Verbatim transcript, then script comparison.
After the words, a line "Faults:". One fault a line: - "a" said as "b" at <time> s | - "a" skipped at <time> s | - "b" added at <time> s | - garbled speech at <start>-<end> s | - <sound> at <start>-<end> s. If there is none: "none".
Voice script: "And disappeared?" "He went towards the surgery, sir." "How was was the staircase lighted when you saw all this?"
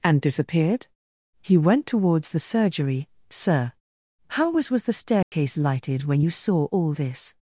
"And disappeared?" "He went towards the surgery, sir." "How was was the staircase lighted when you saw all this?"
Faults:
- dropout at 5.2-5.3 s